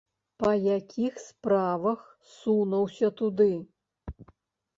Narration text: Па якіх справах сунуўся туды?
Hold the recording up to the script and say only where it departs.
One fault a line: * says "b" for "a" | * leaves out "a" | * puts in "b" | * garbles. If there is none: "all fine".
all fine